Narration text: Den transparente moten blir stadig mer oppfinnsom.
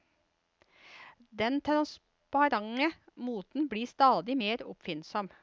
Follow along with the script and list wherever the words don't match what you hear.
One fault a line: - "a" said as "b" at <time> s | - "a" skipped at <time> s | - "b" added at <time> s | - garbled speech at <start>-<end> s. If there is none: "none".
none